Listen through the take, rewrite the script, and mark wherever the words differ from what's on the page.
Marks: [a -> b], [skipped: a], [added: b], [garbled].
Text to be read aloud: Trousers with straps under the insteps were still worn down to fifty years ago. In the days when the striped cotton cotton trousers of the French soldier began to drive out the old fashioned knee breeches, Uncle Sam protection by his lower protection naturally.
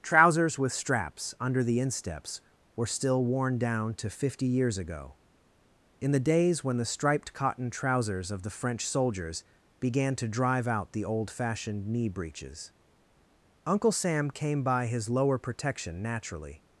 Trousers with straps under the insteps were still worn down to fifty years ago. In the days when the striped cotton [skipped: cotton] trousers of the French [soldier -> soldiers] began to drive out the old fashioned knee breeches, Uncle Sam [protection -> came] by his lower protection naturally.